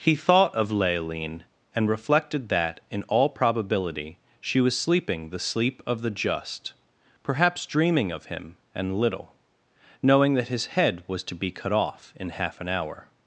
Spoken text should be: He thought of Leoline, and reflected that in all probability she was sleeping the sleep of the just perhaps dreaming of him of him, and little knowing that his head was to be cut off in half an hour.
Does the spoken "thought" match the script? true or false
true